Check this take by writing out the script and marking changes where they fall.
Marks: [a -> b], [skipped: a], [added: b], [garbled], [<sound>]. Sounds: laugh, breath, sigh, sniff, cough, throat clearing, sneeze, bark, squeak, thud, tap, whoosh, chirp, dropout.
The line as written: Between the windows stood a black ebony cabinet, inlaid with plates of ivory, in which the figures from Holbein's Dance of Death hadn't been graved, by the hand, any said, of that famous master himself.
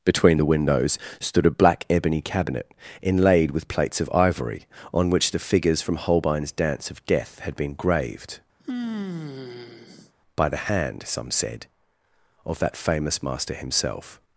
Between the windows stood a black ebony cabinet, inlaid with plates of ivory, [in -> on] which the figures from Holbein's Dance of Death [hadn't -> had] been graved, [sigh] by the hand, [any -> some] said, of that famous master himself.